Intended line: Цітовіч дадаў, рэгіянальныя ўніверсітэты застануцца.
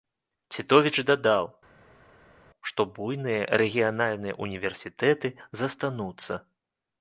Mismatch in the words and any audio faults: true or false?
true